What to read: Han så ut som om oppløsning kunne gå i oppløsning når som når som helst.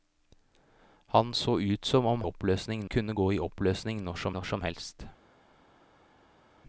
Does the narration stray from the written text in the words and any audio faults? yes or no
no